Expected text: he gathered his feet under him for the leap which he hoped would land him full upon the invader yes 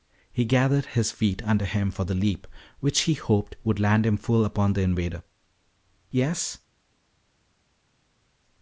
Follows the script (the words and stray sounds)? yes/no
yes